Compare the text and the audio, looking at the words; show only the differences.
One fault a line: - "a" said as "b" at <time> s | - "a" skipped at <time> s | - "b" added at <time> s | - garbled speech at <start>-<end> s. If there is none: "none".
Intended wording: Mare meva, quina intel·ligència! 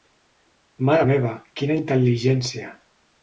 none